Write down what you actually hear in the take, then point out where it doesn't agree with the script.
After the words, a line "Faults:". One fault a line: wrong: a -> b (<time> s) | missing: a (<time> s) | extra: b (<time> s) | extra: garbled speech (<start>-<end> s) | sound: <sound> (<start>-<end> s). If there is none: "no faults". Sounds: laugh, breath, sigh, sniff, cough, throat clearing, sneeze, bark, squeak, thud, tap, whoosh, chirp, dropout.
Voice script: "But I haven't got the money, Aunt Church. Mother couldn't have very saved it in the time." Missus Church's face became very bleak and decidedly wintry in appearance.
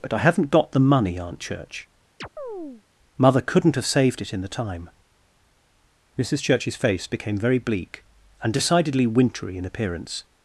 "But I haven't got the money, Aunt Church. Mother couldn't have saved it in the time." Missus Church's face became very bleak and decidedly wintry in appearance.
Faults:
sound: chirp (2.2-2.8 s)
missing: very (3.9 s)